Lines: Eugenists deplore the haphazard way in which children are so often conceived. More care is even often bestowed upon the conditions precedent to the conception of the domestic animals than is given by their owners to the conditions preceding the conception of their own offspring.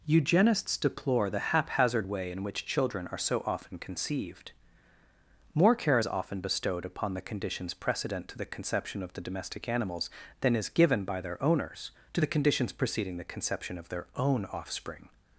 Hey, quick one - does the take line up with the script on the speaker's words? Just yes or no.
no